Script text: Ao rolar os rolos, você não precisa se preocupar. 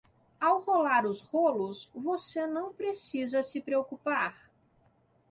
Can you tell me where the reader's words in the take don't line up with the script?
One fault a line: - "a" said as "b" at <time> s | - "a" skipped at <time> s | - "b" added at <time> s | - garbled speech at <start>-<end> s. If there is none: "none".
none